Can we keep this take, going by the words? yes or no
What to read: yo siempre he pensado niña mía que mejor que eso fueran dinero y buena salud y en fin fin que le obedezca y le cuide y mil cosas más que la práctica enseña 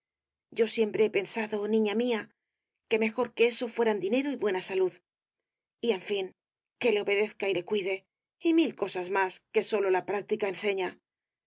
no